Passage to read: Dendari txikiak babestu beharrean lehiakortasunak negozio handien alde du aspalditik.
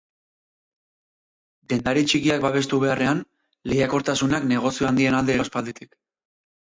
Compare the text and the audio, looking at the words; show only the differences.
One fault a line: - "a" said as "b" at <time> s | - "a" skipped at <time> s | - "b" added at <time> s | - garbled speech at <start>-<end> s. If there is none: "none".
none